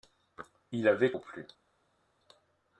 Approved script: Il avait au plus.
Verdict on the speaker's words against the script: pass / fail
pass